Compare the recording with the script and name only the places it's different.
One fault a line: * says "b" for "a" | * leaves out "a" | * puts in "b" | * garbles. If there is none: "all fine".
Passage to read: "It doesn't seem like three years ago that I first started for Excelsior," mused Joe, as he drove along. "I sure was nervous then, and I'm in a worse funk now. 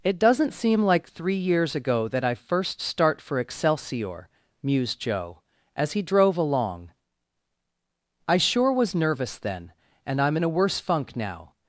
* says "start" for "started"